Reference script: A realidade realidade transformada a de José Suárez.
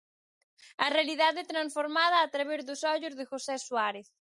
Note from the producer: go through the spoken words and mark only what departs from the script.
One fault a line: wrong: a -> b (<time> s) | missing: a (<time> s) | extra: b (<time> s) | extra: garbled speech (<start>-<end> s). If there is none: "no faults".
missing: realidade (1.4 s)
extra: través dos ollos (2.3 s)